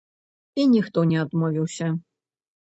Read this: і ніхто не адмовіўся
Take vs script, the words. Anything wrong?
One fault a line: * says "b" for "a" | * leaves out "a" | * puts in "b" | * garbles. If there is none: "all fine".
all fine